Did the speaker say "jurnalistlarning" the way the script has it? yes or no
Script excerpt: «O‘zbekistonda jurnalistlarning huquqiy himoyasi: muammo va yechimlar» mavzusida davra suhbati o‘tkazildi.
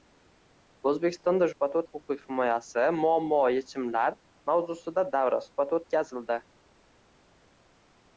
no